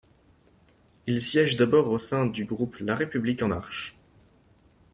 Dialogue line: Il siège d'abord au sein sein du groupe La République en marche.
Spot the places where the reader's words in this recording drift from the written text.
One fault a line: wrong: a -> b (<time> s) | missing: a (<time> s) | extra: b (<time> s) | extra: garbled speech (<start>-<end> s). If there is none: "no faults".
missing: sein (2.2 s)